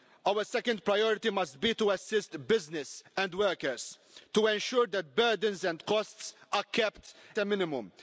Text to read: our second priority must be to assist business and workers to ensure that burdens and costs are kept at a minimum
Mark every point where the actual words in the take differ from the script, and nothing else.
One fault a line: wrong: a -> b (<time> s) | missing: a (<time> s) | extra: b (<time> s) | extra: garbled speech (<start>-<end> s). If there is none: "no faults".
missing: at (7.2 s)